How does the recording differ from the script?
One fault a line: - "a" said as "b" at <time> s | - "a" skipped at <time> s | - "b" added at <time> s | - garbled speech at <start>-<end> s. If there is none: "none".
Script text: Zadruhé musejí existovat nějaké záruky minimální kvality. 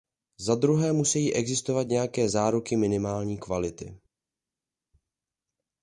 none